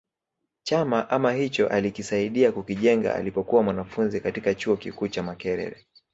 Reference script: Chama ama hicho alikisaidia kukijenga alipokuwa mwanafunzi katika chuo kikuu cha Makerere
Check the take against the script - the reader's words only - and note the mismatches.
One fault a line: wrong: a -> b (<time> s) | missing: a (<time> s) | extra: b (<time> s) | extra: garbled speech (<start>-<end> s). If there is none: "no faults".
no faults